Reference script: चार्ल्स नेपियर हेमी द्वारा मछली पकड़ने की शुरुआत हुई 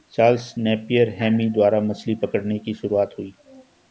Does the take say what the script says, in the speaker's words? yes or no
yes